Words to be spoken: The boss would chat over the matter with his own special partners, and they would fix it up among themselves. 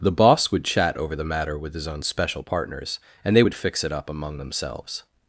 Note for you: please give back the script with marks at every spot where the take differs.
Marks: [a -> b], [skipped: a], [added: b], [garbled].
The boss would chat over the matter with his own special partners, and they would fix it up among themselves.